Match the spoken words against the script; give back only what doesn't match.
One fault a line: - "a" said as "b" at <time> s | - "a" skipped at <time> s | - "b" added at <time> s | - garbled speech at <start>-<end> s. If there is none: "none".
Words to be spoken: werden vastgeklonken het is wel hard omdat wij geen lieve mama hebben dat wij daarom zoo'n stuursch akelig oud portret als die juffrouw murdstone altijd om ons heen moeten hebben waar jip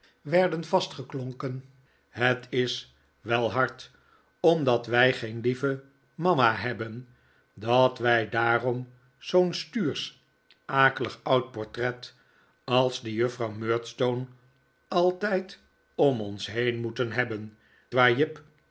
none